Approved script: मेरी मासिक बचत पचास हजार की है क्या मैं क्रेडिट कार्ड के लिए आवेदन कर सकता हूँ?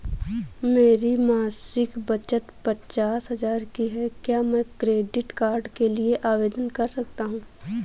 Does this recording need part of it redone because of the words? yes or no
no